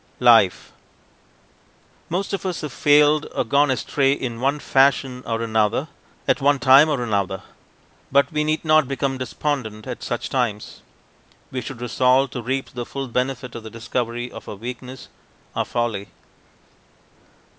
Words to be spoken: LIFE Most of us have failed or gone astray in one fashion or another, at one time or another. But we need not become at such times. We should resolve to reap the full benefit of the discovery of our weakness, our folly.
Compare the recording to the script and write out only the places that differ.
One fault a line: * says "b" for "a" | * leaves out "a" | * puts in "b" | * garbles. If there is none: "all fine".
* puts in "despondent"